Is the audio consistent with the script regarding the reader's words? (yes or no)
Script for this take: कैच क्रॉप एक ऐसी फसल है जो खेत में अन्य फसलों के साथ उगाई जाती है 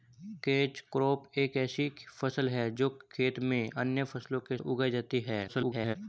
no